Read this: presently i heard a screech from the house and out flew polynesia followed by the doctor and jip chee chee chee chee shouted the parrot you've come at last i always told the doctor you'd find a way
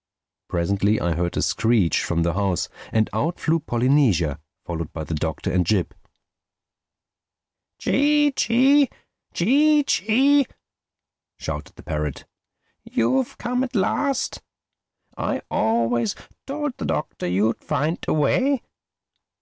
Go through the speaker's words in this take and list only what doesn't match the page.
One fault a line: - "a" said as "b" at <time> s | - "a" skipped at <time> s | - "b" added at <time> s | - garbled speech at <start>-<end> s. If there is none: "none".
none